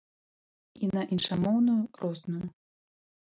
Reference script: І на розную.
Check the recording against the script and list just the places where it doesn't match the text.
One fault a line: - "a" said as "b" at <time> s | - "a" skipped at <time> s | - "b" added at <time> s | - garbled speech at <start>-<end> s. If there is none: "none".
- "іншамоўную" added at 1.2 s